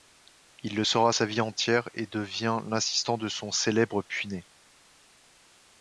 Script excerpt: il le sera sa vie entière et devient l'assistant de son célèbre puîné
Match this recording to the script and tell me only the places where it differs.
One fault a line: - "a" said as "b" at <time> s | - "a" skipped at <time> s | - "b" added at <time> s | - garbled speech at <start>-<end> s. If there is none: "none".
none